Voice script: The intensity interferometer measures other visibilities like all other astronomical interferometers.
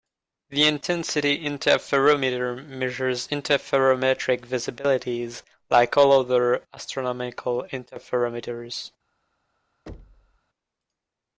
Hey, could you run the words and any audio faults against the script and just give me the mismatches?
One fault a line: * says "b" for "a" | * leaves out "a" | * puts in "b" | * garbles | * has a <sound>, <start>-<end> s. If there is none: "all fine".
* says "interferometric" for "other"
* has a thud, 9.9-10.4 s